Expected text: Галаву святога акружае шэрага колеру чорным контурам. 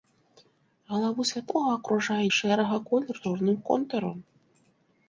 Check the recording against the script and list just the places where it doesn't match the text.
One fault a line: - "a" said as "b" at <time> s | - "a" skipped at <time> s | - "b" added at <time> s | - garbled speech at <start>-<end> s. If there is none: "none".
none